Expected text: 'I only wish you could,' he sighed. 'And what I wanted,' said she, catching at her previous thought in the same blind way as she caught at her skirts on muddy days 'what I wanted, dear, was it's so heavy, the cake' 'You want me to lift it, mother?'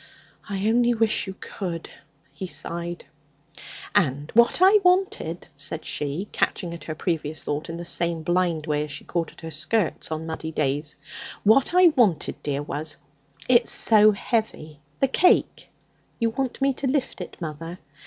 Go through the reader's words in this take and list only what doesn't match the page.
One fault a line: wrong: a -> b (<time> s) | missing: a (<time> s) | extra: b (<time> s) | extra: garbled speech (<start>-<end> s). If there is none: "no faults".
no faults